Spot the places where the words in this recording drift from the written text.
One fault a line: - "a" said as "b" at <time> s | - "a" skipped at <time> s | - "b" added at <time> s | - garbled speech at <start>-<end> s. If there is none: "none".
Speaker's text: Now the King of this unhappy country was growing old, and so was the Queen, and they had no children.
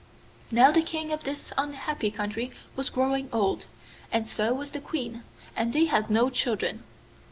none